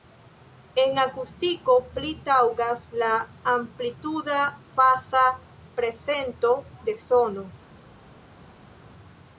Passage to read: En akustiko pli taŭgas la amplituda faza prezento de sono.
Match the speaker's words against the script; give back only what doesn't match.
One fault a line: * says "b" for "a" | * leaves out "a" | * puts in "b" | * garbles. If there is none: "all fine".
all fine